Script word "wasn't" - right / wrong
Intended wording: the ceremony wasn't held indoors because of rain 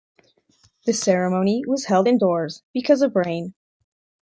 wrong